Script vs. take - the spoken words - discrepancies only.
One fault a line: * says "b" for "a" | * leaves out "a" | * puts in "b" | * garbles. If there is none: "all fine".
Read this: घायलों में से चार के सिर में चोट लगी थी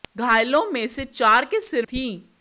* leaves out "में चोट लगी"